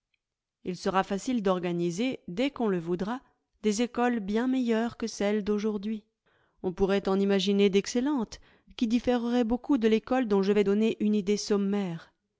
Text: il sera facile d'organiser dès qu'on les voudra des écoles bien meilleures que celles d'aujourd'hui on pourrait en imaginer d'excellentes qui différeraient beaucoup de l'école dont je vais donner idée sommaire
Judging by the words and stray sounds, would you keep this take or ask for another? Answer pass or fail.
fail